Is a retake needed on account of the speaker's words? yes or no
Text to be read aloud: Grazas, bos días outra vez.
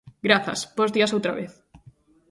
no